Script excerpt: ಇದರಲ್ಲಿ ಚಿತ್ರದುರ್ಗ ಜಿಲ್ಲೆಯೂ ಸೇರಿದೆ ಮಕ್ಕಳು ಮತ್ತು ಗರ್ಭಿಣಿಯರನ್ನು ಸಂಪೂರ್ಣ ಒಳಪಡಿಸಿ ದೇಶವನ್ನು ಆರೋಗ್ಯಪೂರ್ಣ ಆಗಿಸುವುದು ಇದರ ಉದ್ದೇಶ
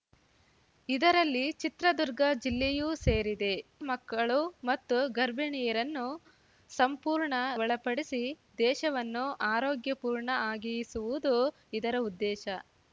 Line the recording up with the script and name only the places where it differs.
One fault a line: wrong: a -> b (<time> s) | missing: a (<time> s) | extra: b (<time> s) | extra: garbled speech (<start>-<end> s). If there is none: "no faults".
no faults